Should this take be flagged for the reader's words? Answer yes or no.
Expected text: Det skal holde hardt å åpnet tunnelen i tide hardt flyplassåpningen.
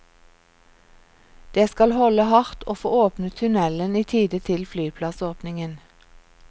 yes